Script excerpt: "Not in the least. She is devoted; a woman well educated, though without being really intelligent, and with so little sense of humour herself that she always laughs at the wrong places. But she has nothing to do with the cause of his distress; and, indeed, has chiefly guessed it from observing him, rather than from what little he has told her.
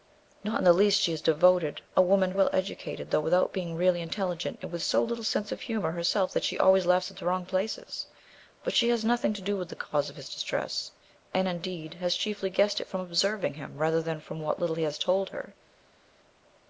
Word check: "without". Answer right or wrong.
right